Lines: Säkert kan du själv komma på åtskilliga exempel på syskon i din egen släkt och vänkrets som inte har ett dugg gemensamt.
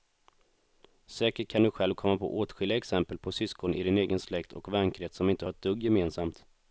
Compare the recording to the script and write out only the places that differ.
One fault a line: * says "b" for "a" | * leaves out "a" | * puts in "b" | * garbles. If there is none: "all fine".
all fine